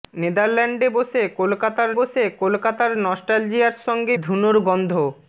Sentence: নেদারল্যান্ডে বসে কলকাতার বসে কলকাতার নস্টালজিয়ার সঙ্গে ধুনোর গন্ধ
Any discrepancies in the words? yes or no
no